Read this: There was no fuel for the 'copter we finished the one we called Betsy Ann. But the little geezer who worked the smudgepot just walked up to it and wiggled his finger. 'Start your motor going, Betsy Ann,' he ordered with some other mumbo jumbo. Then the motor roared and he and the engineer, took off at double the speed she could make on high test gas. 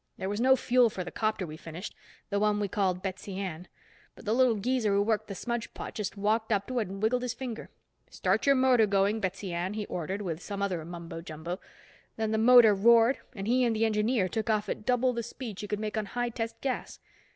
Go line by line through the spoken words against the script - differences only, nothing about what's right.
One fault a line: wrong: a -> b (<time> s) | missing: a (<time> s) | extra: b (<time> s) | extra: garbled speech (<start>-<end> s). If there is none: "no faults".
no faults